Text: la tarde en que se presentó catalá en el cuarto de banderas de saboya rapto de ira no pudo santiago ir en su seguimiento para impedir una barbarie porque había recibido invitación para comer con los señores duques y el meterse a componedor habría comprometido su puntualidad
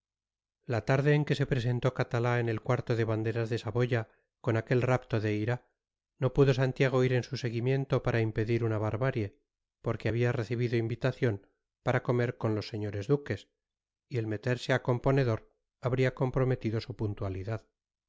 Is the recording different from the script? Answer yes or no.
yes